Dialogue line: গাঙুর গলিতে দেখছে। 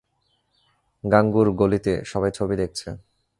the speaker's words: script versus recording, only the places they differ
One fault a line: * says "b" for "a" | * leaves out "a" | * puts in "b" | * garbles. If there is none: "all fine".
* puts in "সবাই ছবি"